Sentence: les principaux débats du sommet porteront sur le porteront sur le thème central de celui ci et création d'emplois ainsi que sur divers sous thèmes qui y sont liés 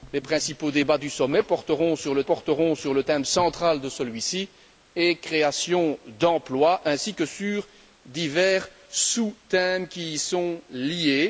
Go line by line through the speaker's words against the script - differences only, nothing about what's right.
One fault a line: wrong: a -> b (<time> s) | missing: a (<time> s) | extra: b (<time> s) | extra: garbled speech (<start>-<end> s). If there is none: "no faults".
no faults